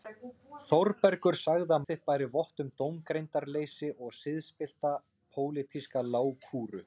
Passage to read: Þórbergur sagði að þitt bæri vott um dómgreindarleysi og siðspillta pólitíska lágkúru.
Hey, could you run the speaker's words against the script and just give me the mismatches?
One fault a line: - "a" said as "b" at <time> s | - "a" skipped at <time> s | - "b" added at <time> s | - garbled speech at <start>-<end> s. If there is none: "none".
none